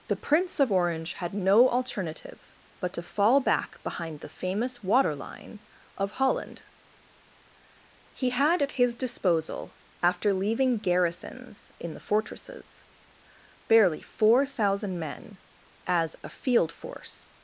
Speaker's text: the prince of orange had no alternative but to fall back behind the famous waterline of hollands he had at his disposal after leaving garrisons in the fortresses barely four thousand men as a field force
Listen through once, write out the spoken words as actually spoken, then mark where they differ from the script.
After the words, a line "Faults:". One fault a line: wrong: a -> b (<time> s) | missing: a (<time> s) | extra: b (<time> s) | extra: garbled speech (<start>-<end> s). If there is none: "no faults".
the prince of orange had no alternative but to fall back behind the famous waterline of holland he had at his disposal after leaving garrisons in the fortresses barely four thousand men as a field force
Faults:
wrong: hollands -> holland (6.1 s)